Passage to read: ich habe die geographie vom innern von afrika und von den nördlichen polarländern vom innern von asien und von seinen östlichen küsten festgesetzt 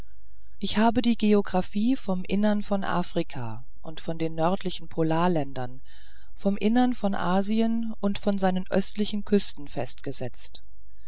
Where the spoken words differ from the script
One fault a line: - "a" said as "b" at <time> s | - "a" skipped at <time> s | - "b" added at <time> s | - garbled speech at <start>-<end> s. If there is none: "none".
none